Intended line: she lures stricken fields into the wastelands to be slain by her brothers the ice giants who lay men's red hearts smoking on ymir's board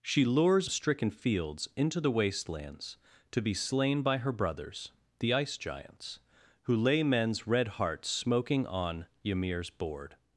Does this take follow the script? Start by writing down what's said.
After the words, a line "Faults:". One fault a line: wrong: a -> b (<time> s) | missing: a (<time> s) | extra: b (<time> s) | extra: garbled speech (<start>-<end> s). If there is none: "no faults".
she lures stricken fields into the wastelands to be slain by her brothers the ice giants who lay men's red hearts smoking on ymir's board
Faults:
no faults